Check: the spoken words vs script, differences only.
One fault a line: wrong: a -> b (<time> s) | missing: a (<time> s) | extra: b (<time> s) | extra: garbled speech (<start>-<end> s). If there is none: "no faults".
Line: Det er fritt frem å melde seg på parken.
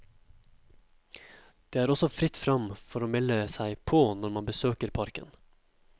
extra: også (1.9 s)
extra: for (2.8 s)
extra: når man besøker (4.2 s)